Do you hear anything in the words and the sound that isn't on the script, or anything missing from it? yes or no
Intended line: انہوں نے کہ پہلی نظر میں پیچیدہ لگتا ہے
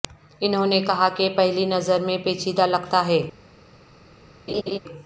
yes